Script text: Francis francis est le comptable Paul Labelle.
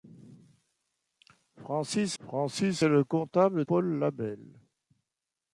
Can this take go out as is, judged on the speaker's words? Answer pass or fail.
pass